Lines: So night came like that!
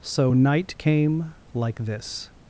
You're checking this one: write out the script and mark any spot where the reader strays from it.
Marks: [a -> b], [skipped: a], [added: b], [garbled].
So night came like [that! -> this]